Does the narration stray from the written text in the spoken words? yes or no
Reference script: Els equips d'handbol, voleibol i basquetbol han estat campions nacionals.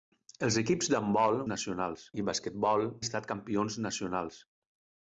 yes